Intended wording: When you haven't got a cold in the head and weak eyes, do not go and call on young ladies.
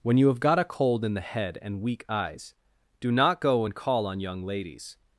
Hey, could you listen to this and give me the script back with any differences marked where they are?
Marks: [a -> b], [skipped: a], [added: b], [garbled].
When you [haven't -> have] got a cold in the head and weak eyes, do not go and call on young ladies.